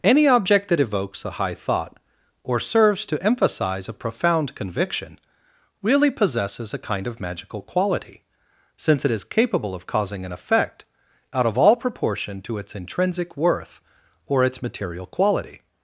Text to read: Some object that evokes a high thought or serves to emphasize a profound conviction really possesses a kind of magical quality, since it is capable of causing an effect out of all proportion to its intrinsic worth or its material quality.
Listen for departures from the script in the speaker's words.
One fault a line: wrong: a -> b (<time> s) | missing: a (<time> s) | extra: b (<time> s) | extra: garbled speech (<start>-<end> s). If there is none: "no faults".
wrong: Some -> Any (0.0 s)